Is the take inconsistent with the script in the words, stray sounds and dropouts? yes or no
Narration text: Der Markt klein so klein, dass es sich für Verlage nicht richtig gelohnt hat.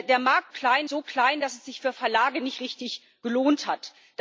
no